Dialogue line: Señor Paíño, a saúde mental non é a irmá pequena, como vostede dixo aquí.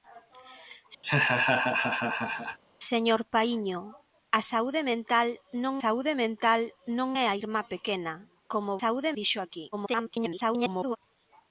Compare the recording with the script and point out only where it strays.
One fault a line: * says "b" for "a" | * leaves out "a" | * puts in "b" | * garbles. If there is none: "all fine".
* puts in "saúde mental non"
* says "saúde" for "vostede"
* garbles